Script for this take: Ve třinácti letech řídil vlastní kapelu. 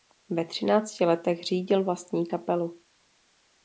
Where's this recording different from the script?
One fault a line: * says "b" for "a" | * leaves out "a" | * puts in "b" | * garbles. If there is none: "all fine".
all fine